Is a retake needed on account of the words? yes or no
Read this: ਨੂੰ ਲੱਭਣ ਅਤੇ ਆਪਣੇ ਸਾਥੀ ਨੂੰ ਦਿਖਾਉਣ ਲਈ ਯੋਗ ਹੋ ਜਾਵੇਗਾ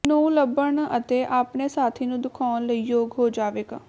no